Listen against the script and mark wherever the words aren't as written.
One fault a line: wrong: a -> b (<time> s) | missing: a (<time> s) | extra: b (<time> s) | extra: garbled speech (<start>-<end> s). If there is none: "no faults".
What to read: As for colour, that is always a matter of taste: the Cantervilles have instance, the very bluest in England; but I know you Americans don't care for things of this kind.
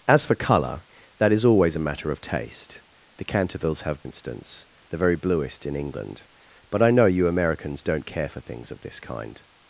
no faults